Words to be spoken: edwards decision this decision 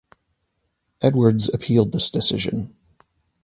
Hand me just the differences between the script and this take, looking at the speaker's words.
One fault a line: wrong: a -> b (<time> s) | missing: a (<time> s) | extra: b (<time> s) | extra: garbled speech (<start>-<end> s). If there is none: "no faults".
wrong: decision -> appealed (1.5 s)